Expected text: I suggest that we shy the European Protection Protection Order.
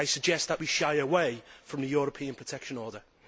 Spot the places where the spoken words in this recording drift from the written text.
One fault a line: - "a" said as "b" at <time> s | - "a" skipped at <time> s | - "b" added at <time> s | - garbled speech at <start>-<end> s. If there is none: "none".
- "away from" added at 0.9 s
- "Protection" skipped at 2.8 s